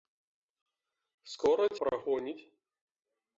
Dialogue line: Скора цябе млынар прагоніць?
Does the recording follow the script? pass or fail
fail